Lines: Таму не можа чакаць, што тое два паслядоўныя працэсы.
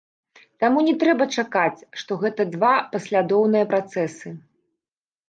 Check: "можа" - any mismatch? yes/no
yes